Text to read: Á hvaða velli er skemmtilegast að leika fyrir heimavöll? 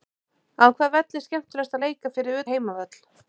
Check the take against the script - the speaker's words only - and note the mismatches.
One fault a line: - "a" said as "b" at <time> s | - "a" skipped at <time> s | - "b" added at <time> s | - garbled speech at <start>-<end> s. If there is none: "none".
none